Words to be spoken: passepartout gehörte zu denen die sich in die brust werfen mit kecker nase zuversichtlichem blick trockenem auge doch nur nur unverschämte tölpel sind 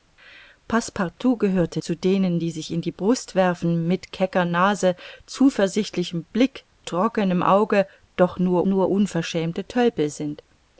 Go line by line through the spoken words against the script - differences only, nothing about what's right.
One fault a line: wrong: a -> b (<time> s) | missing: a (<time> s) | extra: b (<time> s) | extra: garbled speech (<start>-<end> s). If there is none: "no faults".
no faults